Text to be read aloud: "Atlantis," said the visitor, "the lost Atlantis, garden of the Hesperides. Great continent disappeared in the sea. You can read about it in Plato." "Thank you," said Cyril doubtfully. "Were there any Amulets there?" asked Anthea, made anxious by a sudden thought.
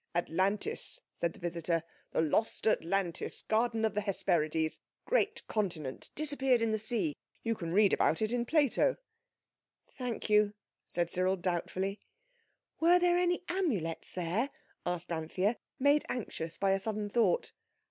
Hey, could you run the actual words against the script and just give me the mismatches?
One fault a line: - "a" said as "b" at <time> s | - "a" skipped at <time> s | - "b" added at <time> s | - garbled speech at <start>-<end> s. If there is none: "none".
none